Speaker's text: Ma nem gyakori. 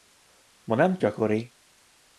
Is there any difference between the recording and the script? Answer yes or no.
no